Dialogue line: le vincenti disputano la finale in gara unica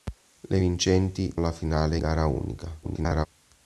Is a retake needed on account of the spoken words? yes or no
yes